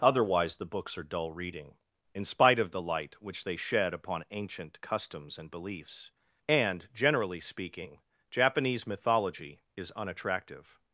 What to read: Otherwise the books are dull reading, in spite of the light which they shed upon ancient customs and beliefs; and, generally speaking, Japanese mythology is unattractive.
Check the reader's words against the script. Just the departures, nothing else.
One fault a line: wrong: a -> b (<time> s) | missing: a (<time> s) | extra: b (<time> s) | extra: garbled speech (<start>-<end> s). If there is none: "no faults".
no faults